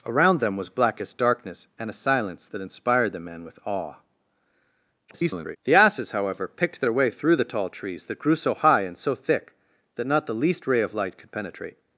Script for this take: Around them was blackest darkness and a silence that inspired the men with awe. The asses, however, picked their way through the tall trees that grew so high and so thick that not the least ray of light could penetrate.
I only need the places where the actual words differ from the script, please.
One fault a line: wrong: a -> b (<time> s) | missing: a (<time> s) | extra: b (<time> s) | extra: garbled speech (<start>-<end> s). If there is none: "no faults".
extra: garbled speech (5.1-5.6 s)